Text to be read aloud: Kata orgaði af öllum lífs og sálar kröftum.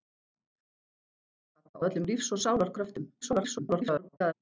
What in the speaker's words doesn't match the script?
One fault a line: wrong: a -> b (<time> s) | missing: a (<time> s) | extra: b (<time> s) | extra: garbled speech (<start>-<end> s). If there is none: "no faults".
missing: orgaði (1.8 s)
extra: garbled speech (3.2-4.3 s)